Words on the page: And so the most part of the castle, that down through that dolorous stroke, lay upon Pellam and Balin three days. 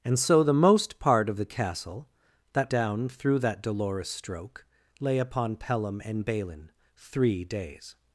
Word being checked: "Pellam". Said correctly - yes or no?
yes